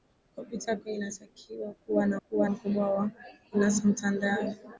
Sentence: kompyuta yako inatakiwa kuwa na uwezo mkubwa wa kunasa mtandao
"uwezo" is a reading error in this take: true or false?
true